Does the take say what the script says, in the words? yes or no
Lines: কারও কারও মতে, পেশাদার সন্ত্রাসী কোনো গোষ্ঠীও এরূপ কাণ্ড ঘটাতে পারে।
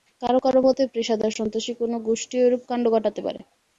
yes